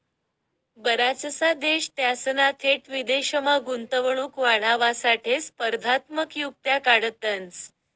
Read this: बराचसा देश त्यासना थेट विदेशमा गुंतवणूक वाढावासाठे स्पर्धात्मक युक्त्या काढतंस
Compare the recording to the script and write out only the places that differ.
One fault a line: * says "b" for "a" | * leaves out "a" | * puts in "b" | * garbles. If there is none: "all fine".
all fine